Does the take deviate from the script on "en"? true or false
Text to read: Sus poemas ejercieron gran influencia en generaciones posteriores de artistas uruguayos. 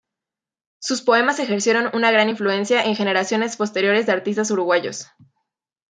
false